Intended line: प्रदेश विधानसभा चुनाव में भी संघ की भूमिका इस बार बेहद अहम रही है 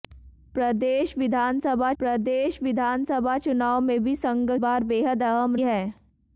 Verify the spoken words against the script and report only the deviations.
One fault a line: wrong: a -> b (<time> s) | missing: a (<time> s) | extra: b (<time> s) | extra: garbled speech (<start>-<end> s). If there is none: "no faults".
extra: प्रदेश विधानसभा (2.0 s)
missing: की भूमिका इस (4.5 s)
missing: रही (5.6 s)